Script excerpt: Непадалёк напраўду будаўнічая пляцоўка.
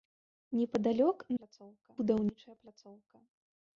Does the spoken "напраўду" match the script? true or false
false